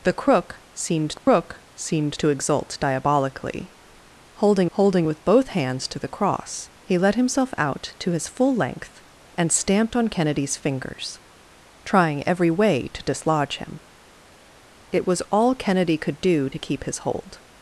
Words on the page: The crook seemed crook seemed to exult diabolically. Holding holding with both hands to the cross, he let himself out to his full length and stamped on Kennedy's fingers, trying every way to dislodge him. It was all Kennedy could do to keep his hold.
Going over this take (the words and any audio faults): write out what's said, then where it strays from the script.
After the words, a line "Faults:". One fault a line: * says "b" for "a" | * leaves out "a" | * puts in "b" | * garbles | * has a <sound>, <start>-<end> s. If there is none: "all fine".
The crook seemed crook seemed to exult diabolically. Holding holding with both hands to the cross, he let himself out to his full length and stamped on Kennedy's fingers, trying every way to dislodge him. It was all Kennedy could do to keep his hold.
Faults:
* has a dropout, 1.2-1.3 s